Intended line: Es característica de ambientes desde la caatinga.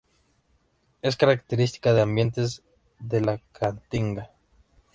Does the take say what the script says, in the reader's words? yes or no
no